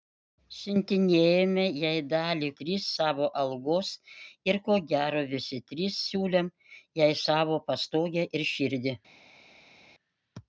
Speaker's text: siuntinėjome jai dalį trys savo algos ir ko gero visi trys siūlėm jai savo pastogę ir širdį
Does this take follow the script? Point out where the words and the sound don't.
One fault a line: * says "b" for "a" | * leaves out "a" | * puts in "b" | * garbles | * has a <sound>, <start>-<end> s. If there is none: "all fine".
all fine